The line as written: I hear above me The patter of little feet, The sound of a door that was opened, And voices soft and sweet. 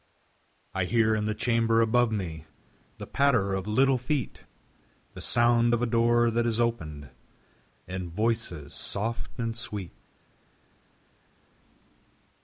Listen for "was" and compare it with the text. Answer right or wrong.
wrong